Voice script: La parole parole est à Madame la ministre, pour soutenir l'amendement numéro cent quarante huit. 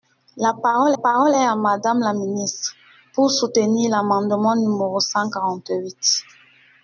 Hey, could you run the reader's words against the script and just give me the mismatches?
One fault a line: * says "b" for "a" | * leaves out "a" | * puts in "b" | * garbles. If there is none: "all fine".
all fine